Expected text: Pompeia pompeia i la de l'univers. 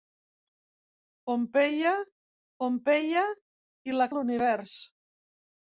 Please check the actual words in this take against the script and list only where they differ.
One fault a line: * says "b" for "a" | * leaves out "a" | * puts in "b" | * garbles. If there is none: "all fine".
all fine